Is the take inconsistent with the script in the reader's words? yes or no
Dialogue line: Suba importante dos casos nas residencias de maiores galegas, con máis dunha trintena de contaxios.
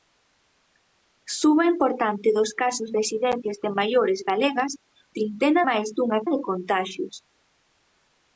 yes